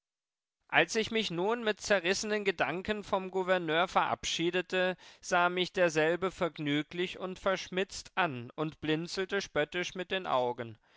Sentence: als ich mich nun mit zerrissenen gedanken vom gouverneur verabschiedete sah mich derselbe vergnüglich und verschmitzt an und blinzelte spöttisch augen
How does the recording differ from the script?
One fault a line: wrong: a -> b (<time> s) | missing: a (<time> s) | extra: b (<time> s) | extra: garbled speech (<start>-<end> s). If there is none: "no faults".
extra: mit den (9.9 s)